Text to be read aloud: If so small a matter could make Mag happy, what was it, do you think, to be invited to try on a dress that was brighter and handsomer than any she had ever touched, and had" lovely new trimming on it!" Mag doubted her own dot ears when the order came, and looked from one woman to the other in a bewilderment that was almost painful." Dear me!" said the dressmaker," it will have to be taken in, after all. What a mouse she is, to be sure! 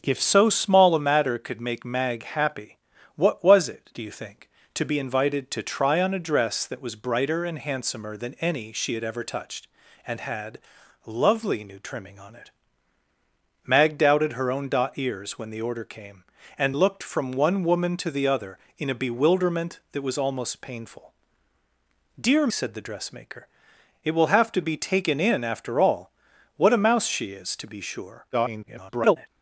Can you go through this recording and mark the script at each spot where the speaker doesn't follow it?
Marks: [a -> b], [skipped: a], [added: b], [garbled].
If so small a matter could make Mag happy, what was it, do you think, to be invited to try on a dress that was brighter and handsomer than any she had ever touched, and had" lovely new trimming on it!" Mag doubted her own dot ears when the order came, and looked from one woman to the other in a bewilderment that was almost painful." Dear [skipped: me!"] said the dressmaker," it will have to be taken in, after all. What a mouse she is, to be sure! [garbled]